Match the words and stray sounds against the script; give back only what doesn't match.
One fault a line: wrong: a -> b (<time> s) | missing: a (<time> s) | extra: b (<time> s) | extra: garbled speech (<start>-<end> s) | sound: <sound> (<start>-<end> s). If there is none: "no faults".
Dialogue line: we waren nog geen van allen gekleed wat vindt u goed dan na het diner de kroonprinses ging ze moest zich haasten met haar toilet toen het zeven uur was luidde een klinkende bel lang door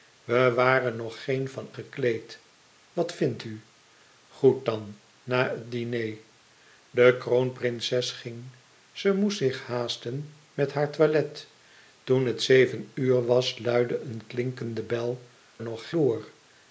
missing: allen (1.7 s)
wrong: lang -> nog (15.6 s)